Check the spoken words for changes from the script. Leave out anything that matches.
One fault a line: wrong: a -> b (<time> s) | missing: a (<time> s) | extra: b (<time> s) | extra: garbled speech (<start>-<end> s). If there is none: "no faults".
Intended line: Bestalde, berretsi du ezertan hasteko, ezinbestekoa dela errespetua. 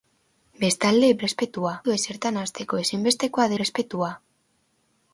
wrong: berretsi -> errespetua (1.2 s)
missing: dela (3.5 s)